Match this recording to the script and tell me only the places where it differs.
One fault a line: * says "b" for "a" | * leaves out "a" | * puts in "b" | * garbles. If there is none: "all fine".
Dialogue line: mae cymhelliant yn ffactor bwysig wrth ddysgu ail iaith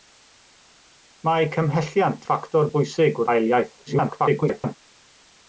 * leaves out "yn"
* leaves out "wrth ddysgu"
* garbles